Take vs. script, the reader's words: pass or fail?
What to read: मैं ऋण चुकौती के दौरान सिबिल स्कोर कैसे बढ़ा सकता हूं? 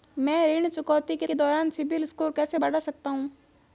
fail